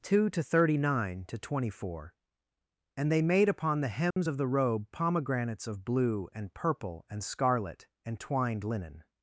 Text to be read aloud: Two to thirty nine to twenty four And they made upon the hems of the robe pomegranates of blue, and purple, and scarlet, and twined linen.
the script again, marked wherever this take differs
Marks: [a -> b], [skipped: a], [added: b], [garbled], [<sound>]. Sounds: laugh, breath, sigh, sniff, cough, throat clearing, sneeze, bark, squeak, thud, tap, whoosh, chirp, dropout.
Two to thirty nine to twenty four And they made upon the hems [dropout] of the robe pomegranates of blue, and purple, and scarlet, and twined linen.